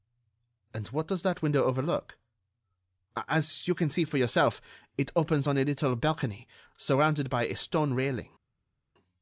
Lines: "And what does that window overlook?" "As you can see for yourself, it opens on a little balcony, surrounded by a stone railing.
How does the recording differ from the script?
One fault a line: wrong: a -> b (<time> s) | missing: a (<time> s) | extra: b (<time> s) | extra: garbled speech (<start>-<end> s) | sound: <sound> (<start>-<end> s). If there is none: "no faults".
no faults